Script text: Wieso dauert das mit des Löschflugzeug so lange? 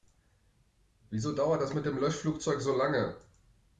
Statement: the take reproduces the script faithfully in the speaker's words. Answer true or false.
false